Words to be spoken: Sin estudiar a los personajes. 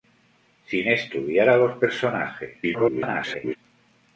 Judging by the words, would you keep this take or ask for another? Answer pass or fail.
fail